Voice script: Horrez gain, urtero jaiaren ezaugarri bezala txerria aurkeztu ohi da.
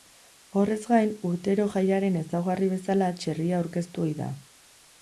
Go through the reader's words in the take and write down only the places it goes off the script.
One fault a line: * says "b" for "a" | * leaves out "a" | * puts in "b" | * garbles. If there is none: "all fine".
all fine